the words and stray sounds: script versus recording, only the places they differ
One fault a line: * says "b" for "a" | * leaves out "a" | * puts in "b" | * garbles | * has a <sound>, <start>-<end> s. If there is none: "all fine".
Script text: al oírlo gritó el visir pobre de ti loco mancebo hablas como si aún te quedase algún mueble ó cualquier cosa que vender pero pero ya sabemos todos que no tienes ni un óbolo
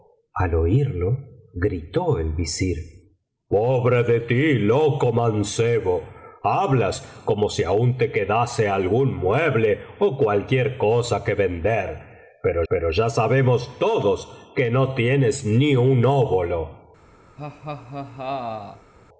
* has a laugh, 17.4-18.9 s